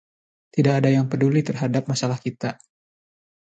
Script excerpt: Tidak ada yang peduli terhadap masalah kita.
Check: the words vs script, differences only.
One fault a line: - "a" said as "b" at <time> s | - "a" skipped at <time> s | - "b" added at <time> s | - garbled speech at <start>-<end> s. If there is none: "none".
none